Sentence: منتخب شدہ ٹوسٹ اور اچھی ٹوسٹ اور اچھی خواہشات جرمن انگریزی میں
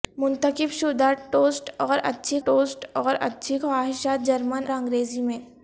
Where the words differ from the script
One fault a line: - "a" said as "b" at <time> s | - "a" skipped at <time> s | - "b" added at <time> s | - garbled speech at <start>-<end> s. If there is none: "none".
none